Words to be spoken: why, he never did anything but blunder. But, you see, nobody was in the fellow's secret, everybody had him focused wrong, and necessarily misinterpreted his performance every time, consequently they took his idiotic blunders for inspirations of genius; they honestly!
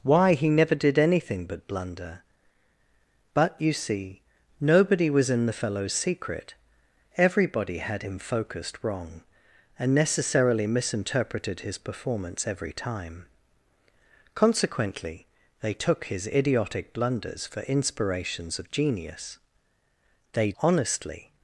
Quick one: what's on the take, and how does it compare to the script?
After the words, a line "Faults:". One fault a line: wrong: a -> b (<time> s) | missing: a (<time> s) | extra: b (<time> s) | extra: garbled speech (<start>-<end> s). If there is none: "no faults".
why, he never did anything but blunder. But, you see, nobody was in the fellow's secret, everybody had him focused wrong, and necessarily misinterpreted his performance every time, consequently they took his idiotic blunders for inspirations of genius; they honestly!
Faults:
no faults